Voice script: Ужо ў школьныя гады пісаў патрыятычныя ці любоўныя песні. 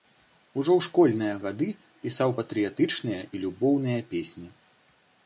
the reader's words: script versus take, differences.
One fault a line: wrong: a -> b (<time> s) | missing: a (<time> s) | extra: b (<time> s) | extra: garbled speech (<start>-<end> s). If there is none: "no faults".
wrong: ці -> і (3.3 s)